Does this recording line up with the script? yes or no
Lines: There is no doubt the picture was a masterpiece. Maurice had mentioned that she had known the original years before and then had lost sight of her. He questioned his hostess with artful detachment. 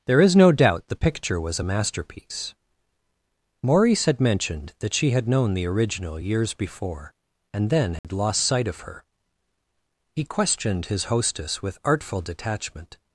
yes